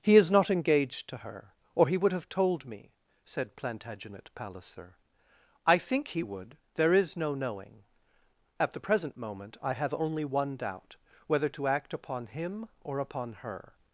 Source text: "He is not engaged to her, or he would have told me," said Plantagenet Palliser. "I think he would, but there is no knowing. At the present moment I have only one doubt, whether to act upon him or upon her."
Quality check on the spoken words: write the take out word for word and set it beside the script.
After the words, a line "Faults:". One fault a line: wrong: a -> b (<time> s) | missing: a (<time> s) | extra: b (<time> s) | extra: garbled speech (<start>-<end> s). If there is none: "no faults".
"He is not engaged to her, or he would have told me," said Plantagenet Palliser. "I think he would, there is no knowing. At the present moment I have only one doubt, whether to act upon him or upon her."
Faults:
missing: but (6.6 s)